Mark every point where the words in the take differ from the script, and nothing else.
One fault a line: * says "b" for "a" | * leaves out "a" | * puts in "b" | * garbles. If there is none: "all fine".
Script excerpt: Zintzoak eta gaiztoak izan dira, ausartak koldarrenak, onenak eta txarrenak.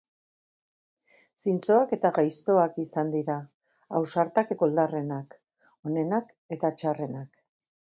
all fine